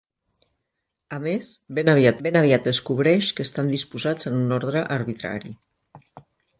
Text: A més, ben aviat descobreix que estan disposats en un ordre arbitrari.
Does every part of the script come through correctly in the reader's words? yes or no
no